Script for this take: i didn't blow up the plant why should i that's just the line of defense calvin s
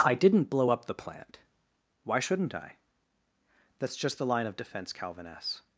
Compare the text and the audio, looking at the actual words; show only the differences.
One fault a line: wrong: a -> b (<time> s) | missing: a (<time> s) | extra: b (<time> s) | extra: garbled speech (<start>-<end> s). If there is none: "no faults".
wrong: should -> shouldn't (2.2 s)